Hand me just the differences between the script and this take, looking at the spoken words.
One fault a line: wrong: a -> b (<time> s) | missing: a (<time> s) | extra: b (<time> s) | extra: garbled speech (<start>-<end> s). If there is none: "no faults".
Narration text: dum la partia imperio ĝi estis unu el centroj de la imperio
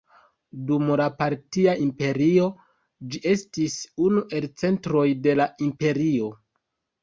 no faults